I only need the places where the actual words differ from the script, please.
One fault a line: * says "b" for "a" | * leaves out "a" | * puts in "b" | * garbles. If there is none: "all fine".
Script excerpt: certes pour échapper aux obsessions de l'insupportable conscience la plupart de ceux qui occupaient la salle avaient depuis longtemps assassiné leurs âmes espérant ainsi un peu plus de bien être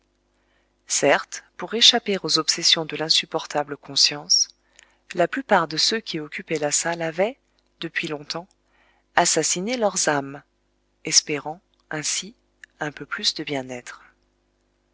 all fine